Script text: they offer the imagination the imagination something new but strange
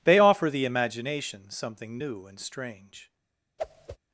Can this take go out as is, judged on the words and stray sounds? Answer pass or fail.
fail